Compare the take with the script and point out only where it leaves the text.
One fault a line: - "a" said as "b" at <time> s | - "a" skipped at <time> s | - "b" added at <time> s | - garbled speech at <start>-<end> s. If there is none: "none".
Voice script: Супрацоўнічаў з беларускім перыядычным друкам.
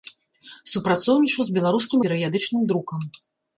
none